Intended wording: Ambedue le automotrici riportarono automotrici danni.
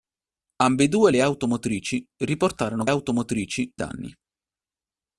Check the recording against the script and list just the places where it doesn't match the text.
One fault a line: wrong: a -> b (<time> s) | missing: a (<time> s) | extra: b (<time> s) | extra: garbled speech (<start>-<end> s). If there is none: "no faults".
no faults